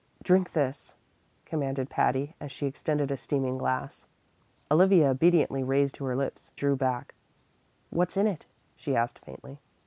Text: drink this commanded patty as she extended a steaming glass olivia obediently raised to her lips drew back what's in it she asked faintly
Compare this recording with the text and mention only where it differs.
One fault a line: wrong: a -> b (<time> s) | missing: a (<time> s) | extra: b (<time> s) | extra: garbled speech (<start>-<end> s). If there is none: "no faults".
no faults